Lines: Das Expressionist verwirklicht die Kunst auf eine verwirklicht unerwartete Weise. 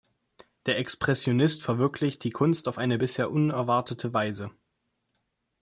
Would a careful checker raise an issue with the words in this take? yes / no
yes